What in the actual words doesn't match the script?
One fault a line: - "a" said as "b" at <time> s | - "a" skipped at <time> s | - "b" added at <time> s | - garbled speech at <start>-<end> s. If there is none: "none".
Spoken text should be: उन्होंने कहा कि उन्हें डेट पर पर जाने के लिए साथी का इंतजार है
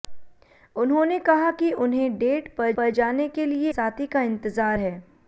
none